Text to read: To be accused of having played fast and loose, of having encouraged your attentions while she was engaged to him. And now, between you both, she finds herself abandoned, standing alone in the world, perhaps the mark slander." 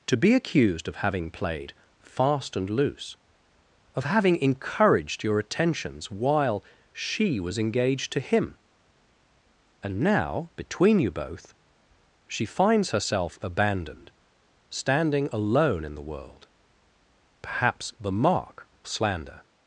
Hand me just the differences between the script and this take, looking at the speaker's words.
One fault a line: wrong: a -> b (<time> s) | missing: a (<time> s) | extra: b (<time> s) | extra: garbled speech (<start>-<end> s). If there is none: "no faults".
no faults